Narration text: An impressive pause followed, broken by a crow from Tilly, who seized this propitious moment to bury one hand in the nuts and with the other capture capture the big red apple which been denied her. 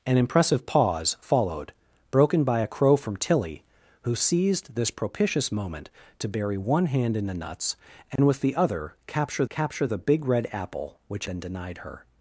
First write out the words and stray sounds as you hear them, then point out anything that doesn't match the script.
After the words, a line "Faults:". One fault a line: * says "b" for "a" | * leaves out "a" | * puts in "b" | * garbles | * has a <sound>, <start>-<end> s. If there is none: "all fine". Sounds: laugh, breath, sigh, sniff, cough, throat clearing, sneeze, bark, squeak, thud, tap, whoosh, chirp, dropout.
An impressive pause followed, broken by a crow from Tilly, who seized this propitious moment to bury one hand in the nuts and with the other capture capture the big red apple which been denied her.
Faults:
* has a dropout, 8.2-8.2 s